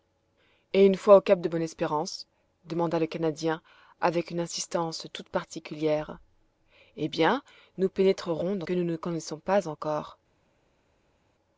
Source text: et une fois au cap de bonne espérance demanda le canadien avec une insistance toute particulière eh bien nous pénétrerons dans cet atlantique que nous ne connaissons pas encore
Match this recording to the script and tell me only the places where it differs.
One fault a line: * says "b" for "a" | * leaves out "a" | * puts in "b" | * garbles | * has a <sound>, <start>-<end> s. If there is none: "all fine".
* leaves out "cet atlantique"